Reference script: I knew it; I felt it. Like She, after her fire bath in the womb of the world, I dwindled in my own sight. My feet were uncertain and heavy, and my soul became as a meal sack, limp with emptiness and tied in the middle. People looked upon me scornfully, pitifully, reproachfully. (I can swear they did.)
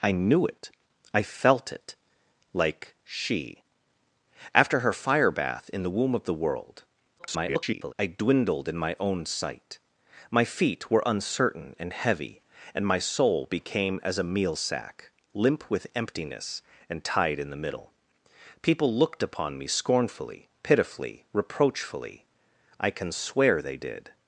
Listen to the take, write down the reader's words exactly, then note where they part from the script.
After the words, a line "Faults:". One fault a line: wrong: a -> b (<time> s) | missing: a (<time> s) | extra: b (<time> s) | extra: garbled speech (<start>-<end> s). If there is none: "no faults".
I knew it; I felt it. Like She, after her fire bath in the womb of the world, [garbled] I dwindled in my own sight. My feet were uncertain and heavy, and my soul became as a meal sack, limp with emptiness and tied in the middle. People looked upon me scornfully, pitifully, reproachfully. (I can swear they did.)
Faults:
extra: garbled speech (7.2-7.9 s)